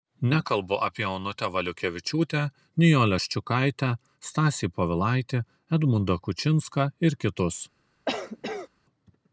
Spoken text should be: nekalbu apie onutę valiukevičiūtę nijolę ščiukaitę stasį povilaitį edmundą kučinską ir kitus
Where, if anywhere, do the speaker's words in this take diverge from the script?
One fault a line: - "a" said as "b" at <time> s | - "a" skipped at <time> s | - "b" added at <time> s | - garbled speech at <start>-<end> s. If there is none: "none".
none